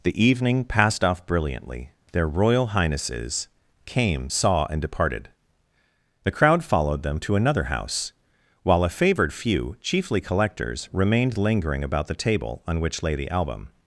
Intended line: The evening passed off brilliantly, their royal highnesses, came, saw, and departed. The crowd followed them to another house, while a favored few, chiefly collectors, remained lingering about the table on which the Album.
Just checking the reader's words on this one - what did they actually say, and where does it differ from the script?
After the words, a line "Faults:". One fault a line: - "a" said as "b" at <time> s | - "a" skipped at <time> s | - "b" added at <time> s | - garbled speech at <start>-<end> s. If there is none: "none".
The evening passed off brilliantly, their royal highnesses, came, saw, and departed. The crowd followed them to another house, while a favored few, chiefly collectors, remained lingering about the table on which lay the Album.
Faults:
- "lay" added at 13.0 s